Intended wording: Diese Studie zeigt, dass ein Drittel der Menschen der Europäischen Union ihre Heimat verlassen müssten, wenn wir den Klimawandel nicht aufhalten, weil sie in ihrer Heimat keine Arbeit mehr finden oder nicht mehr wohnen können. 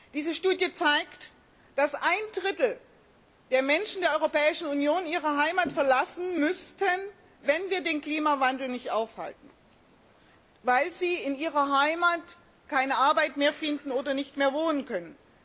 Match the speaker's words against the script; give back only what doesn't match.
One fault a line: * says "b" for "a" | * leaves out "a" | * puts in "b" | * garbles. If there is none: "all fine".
all fine